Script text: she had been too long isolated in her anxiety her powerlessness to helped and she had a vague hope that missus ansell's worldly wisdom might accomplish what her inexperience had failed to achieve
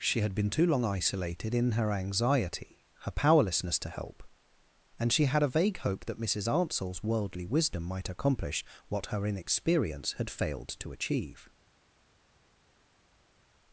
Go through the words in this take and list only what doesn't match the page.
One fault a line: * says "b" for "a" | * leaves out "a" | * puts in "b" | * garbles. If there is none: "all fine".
* says "help" for "helped"